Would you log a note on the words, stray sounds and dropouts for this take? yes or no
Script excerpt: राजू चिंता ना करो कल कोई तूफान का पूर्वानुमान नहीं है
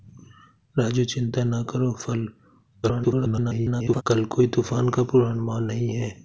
yes